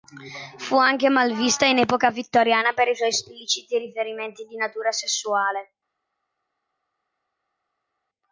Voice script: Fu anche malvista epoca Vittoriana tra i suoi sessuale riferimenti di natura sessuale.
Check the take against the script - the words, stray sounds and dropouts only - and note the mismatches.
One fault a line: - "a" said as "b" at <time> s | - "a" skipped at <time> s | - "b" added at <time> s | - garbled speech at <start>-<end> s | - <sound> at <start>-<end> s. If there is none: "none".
- "in" added at 1.7 s
- "tra" said as "per" at 2.7 s
- "sessuale" said as "espliciti" at 3.1 s